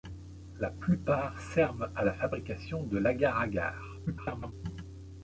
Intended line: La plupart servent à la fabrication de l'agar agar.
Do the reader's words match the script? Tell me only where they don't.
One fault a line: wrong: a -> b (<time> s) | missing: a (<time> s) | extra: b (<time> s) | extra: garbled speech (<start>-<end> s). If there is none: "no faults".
extra: garbled speech (4.1-4.5 s)